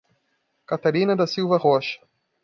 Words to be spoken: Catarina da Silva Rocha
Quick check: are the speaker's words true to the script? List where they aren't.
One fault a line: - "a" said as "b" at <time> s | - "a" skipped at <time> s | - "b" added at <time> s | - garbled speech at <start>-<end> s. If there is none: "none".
none